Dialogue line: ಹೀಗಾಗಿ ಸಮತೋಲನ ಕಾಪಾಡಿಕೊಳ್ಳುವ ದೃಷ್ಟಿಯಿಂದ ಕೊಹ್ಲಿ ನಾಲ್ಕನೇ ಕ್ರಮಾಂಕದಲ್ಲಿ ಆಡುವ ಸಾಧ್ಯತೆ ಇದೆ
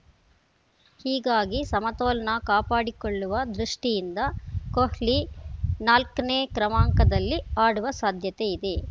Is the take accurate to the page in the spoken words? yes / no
yes